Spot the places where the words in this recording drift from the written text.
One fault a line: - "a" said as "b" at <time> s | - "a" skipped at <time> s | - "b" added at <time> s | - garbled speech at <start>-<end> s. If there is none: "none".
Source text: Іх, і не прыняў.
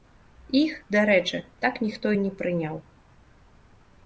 - "дарэчы так ніхто" added at 0.9 s